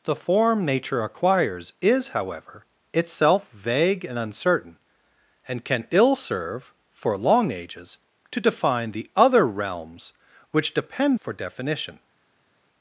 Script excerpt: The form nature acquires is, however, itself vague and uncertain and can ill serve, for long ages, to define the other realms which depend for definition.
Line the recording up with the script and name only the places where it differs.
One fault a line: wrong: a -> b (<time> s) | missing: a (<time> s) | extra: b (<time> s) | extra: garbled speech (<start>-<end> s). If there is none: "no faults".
no faults